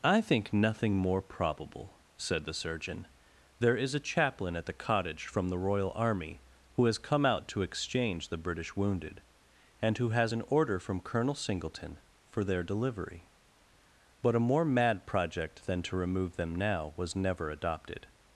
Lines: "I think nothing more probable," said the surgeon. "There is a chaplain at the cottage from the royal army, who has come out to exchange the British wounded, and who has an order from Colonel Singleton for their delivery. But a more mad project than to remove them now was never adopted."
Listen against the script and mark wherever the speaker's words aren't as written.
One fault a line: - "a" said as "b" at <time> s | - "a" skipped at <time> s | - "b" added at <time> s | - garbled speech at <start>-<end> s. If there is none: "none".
none